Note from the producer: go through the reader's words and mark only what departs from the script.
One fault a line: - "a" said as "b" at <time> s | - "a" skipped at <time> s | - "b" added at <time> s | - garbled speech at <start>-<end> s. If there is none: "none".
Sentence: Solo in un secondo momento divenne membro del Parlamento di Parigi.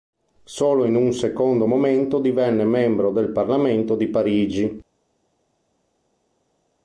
none